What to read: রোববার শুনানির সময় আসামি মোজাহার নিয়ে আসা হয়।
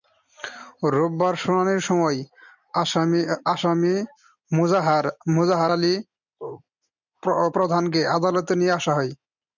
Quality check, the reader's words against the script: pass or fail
fail